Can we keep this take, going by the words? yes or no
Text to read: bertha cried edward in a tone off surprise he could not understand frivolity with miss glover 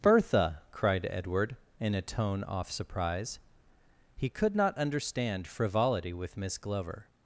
yes